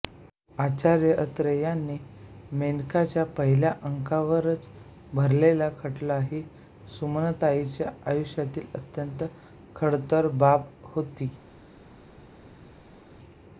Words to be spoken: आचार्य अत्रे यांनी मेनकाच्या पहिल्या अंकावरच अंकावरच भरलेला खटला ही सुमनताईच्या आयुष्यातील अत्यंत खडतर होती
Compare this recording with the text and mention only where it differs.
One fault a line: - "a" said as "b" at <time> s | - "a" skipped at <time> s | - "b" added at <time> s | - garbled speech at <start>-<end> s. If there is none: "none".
- "अंकावरच" skipped at 4.7 s
- "बाब" added at 10.3 s